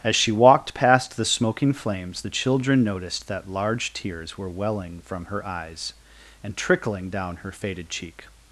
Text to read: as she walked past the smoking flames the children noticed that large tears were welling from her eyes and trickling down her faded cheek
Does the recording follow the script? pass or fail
pass